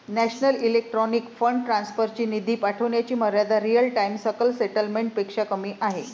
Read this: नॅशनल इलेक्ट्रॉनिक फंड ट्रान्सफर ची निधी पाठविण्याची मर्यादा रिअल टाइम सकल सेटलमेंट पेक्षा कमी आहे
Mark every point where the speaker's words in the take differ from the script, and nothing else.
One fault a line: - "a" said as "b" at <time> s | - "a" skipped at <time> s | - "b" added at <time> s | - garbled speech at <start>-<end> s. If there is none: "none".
none